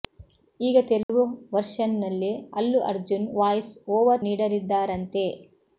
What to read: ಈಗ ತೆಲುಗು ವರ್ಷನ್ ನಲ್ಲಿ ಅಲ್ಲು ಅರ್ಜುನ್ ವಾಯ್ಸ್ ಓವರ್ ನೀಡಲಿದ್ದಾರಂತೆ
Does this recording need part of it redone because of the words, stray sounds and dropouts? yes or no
yes